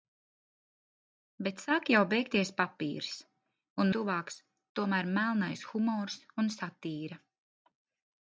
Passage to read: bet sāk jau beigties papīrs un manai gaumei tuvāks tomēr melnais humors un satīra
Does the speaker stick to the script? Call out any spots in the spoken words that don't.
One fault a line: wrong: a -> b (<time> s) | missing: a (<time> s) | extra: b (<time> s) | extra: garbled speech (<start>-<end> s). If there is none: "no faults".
missing: manai gaumei (3.9 s)